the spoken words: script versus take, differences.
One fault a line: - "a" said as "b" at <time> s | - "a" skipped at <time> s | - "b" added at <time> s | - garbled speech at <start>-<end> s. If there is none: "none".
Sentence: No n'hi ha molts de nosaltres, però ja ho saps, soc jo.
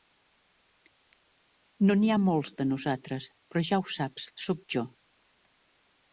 none